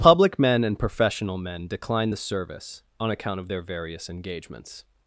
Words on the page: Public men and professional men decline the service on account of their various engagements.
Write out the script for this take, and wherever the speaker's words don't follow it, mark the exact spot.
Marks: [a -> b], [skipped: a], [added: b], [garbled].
Public men and professional men decline the service on account of their various engagements.